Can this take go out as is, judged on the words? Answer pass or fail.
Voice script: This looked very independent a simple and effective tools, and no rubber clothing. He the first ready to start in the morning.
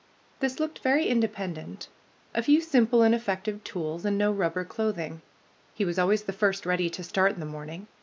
fail